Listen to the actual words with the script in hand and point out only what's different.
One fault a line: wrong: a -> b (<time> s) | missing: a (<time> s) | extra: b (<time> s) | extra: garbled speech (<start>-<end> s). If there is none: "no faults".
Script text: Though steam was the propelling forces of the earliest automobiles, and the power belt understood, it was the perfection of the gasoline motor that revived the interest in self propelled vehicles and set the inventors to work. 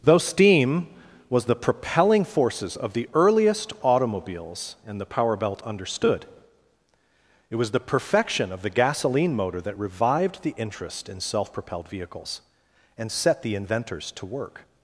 no faults